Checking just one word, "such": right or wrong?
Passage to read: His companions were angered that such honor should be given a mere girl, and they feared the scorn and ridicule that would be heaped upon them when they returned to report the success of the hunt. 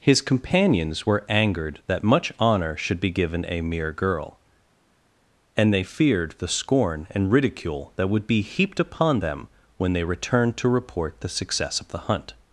wrong